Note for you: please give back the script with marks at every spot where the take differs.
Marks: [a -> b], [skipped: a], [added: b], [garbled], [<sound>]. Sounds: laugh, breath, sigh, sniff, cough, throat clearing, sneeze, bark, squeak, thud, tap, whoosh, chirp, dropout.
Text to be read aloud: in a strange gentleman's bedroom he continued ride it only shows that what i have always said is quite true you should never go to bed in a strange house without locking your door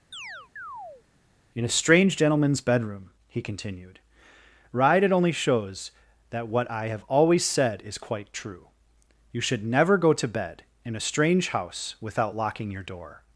[chirp] in a strange gentleman's bedroom he continued ride it only shows that what i have always said is quite true you should never go to bed in a strange house without locking your door